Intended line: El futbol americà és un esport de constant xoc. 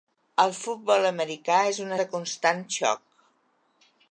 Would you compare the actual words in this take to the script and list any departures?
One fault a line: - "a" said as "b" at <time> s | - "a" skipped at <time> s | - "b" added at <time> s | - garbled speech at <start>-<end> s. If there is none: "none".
- "esport" skipped at 1.9 s